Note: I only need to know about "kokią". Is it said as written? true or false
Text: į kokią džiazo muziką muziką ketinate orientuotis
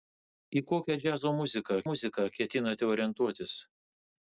true